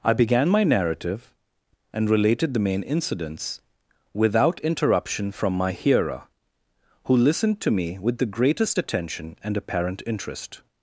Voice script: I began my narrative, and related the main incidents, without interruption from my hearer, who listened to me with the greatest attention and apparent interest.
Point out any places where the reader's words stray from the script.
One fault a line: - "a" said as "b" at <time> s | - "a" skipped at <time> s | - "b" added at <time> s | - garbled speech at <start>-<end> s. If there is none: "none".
none